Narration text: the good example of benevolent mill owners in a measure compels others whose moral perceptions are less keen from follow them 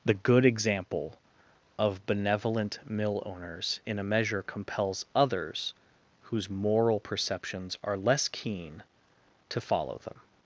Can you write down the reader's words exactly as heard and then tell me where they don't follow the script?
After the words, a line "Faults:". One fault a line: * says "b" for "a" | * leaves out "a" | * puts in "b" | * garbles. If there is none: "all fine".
the good example of benevolent mill owners in a measure compels others whose moral perceptions are less keen to follow them
Faults:
* says "to" for "from"